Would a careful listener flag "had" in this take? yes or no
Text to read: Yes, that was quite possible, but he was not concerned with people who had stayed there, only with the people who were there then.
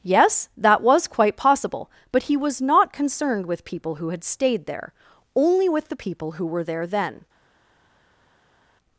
no